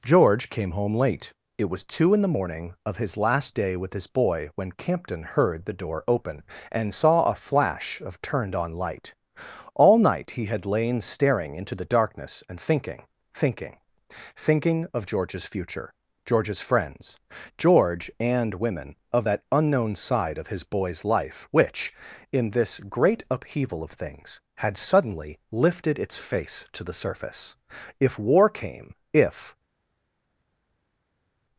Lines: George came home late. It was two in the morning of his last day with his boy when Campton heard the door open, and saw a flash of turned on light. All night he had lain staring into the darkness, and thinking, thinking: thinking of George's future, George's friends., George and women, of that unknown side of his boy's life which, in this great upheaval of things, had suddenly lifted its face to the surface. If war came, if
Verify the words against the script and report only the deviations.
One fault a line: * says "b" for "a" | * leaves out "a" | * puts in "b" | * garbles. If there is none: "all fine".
all fine